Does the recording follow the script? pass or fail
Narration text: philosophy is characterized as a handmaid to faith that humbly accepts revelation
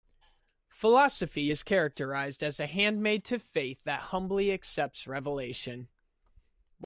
pass